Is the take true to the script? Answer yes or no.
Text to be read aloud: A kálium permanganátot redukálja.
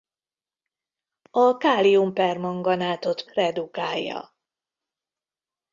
yes